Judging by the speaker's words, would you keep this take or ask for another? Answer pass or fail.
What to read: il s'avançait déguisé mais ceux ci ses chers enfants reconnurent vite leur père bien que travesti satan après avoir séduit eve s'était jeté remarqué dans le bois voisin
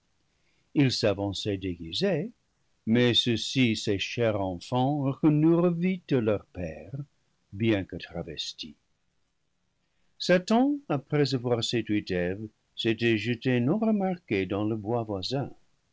fail